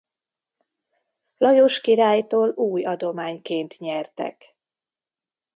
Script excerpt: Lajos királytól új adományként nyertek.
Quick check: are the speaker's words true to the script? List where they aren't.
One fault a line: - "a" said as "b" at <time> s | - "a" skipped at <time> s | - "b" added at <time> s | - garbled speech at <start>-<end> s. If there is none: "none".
none